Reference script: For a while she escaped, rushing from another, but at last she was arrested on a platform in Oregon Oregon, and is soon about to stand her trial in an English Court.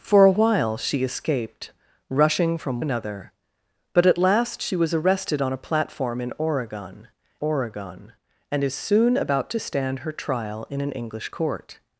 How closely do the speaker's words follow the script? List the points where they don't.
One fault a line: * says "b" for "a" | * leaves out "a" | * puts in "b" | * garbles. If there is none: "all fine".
all fine